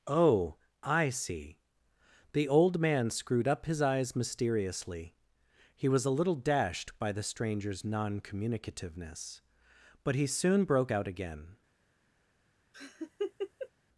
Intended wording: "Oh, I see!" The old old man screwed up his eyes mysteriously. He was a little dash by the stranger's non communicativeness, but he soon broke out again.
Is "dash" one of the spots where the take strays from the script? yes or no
yes